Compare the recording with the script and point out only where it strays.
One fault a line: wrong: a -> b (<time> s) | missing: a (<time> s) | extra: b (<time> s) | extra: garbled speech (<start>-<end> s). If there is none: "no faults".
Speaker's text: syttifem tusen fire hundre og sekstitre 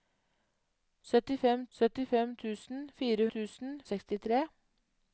extra: syttifem (1.8 s)
wrong: hundre -> tusen (3.4 s)